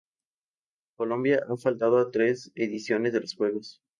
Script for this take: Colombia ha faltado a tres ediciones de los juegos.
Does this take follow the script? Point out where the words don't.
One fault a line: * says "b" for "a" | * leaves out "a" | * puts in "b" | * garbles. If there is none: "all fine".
all fine